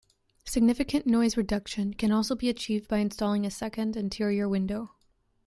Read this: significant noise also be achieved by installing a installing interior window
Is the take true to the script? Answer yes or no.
no